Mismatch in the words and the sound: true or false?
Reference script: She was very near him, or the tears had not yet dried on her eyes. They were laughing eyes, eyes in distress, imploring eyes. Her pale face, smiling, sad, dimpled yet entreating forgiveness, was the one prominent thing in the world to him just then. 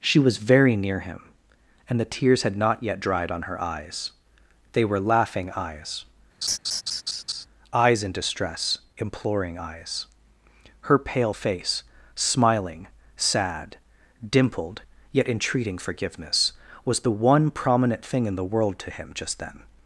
true